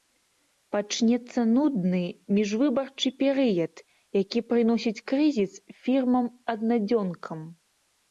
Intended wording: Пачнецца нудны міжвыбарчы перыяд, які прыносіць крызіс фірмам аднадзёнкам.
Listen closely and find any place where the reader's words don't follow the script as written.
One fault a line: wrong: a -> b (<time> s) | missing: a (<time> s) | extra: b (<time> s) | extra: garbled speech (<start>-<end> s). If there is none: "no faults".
no faults